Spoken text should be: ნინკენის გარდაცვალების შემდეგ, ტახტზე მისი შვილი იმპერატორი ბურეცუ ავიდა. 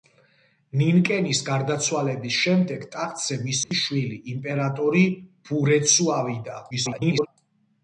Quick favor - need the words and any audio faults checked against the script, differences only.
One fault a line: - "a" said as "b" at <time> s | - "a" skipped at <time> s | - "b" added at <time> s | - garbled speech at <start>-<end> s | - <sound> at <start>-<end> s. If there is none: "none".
- dropout at 3.6-3.7 s
- garbled speech at 6.7-7.3 s